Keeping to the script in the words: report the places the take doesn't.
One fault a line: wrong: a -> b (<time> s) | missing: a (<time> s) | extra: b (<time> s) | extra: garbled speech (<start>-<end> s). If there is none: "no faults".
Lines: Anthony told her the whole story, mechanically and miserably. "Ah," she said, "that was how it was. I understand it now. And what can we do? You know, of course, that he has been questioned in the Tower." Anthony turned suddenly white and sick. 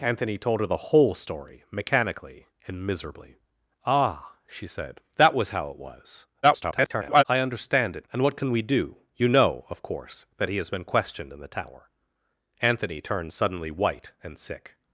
extra: garbled speech (6.4-7.2 s)
missing: now (8.1 s)